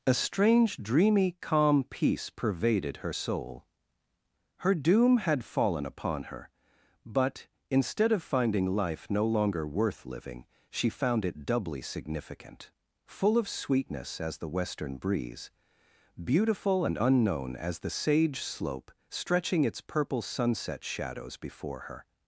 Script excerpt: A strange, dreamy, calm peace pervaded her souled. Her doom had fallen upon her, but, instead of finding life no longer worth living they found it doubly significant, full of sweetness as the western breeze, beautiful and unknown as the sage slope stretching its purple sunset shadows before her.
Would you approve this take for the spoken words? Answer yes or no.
no